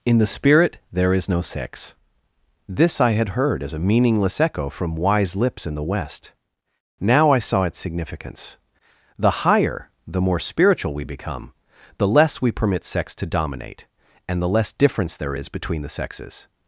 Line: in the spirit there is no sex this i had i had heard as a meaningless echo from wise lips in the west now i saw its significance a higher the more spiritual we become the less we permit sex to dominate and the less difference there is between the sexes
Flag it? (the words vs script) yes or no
yes